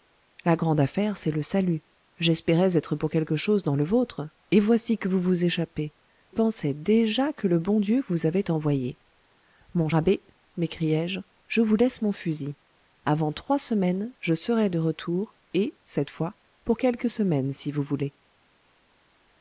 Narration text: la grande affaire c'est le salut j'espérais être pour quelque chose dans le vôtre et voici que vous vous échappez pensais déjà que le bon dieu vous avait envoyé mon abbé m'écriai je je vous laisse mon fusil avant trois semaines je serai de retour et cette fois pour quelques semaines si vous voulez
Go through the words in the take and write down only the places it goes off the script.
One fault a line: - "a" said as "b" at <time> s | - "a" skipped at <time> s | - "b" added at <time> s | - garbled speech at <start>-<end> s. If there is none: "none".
none